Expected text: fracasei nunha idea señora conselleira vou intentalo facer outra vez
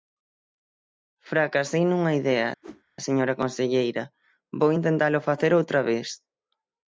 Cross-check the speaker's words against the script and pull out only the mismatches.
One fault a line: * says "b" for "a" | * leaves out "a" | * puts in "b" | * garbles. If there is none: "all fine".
all fine